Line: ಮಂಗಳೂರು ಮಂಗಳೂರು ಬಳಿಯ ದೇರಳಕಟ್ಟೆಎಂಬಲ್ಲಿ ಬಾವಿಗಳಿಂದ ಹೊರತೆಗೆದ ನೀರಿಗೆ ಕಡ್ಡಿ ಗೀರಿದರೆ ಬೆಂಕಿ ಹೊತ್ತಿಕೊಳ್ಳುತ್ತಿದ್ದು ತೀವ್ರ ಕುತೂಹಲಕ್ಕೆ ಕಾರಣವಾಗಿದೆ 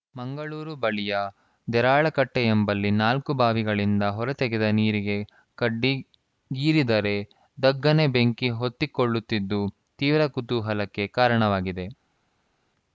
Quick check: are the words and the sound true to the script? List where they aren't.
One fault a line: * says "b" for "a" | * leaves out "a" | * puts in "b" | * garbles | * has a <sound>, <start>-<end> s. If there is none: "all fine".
* leaves out "ಮಂಗಳೂರು"
* puts in "ನಾಲ್ಕು"
* puts in "ಧಗ್ಗನೆ"